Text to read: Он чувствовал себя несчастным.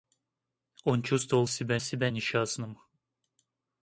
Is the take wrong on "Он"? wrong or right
right